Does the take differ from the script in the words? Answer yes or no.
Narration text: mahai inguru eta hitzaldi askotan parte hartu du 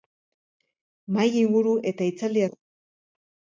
yes